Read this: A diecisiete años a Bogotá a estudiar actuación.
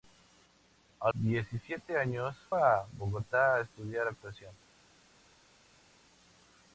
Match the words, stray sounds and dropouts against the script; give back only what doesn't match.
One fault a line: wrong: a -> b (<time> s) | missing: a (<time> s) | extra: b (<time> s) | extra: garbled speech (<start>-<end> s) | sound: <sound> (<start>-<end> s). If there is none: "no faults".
no faults